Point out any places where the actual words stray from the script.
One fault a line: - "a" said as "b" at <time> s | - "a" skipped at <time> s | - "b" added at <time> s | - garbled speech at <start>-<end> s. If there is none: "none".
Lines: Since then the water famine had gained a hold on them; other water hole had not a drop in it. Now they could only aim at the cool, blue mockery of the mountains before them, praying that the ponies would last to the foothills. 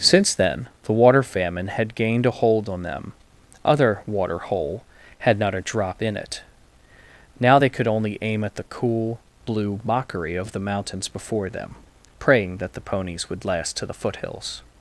none